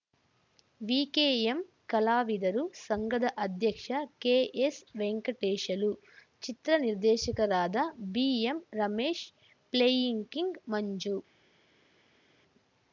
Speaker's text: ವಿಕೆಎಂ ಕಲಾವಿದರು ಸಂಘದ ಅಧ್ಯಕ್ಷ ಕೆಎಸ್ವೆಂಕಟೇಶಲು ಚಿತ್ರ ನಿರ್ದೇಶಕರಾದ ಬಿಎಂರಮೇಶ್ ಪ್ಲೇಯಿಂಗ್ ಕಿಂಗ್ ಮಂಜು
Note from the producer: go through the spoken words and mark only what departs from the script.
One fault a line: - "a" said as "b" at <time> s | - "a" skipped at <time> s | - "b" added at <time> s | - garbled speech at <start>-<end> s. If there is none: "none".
none